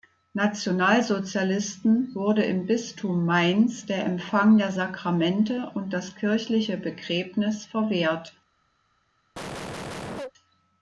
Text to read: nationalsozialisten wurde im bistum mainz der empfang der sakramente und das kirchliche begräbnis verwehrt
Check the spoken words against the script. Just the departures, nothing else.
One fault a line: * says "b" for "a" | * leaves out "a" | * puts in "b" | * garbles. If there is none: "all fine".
all fine